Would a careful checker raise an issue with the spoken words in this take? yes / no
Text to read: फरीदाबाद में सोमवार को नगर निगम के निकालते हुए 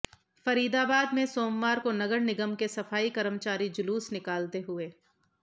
yes